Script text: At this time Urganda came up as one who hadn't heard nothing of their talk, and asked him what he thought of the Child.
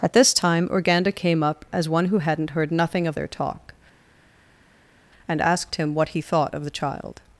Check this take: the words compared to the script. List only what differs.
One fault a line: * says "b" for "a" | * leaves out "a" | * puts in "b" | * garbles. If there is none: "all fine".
all fine